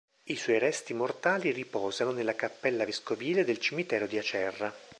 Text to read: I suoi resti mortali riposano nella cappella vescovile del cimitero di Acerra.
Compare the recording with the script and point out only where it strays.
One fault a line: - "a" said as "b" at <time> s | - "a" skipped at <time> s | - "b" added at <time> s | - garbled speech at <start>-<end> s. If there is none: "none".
none